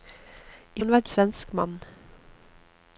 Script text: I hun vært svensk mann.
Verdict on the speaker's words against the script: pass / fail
pass